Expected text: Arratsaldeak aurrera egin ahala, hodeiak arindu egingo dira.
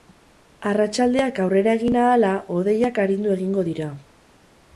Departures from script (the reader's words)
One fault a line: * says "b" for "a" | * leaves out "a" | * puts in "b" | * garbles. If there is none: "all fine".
all fine